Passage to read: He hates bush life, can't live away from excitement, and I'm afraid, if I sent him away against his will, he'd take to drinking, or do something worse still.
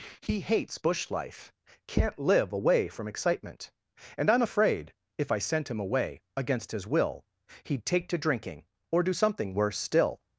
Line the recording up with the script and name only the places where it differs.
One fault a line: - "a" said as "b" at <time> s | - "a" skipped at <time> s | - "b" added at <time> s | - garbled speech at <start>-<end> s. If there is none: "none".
none